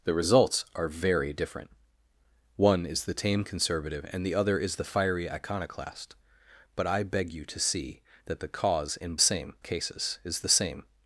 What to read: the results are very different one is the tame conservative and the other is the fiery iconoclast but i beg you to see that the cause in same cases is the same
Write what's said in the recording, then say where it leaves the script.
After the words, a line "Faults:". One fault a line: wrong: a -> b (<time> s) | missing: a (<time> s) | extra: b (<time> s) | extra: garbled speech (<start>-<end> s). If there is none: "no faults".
the results are very different one is the tame conservative and the other is the fiery iconoclast but i beg you to see that the cause in same cases is the same
Faults:
no faults